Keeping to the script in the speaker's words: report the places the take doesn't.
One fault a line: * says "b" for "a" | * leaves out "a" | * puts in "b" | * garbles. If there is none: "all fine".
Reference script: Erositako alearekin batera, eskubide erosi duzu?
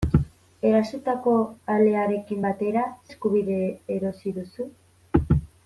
all fine